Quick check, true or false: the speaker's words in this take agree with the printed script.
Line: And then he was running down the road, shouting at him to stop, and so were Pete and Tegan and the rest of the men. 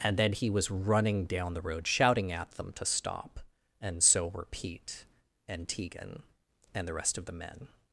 false